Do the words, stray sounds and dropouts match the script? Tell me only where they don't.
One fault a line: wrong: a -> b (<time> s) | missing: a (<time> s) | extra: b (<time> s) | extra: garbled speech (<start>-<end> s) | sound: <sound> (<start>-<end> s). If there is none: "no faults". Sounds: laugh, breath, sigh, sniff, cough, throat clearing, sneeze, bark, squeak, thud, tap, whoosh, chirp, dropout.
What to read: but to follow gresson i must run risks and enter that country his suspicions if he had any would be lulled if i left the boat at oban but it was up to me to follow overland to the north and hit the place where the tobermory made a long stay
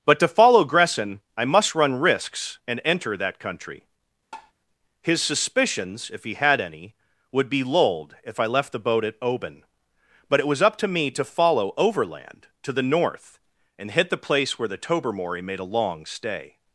sound: tap (4.3-4.5 s)